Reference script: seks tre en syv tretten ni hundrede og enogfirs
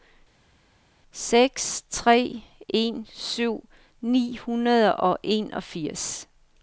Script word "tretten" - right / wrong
wrong